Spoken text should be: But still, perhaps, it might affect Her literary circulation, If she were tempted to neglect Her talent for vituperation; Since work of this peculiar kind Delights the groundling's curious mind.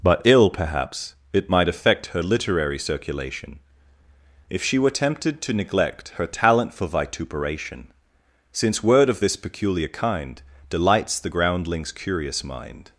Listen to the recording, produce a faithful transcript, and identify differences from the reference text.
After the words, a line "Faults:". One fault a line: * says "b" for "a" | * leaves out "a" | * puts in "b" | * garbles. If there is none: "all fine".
But ill, perhaps, it might affect Her literary circulation, If she were tempted to neglect Her talent for vituperation; Since word of this peculiar kind Delights the groundling's curious mind.
Faults:
* says "ill" for "still"
* says "word" for "work"